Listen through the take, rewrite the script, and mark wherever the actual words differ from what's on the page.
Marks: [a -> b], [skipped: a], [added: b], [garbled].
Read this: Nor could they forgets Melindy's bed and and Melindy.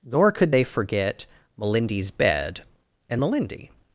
Nor could they [forgets -> forget] Melindy's bed and [skipped: and] Melindy.